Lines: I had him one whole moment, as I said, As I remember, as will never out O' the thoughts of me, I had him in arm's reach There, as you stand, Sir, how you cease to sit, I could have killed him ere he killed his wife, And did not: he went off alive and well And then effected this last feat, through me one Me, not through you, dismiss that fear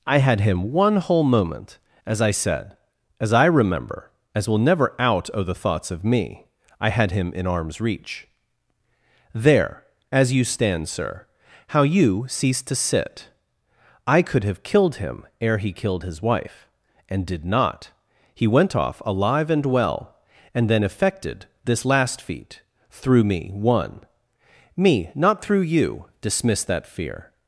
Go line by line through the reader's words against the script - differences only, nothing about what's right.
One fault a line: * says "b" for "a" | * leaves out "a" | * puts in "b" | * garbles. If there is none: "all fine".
all fine